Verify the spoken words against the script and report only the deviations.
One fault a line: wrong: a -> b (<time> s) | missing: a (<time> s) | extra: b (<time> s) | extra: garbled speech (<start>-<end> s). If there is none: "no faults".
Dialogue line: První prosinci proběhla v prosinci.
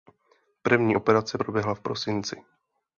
wrong: prosinci -> operace (0.9 s)